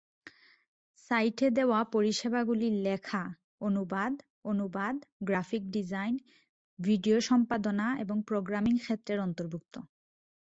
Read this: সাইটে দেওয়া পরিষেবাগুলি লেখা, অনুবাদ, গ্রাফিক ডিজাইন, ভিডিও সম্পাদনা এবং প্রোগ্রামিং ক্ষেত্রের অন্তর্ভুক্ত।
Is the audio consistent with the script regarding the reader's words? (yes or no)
no